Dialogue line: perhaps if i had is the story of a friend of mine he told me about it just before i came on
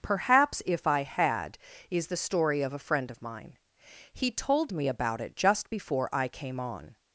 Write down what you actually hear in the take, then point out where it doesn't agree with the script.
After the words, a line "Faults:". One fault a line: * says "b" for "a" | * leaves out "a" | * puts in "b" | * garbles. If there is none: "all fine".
perhaps if i had is the story of a friend of mine he told me about it just before i came on
Faults:
all fine